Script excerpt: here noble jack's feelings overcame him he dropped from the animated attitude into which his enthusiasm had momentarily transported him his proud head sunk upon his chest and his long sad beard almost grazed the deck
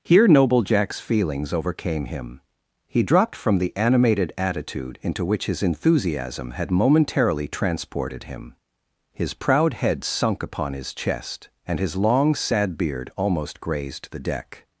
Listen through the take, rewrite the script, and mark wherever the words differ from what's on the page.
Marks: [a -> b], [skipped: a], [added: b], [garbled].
here noble jack's feelings overcame him he dropped from the animated attitude into which his enthusiasm had momentarily transported him his proud head sunk upon his chest and his long sad beard almost grazed the deck